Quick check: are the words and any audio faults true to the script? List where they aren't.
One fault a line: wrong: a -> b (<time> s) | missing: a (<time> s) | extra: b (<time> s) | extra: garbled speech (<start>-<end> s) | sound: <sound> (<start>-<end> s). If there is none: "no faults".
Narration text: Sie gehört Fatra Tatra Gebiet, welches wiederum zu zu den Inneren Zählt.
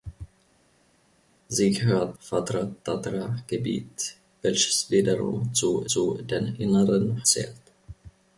no faults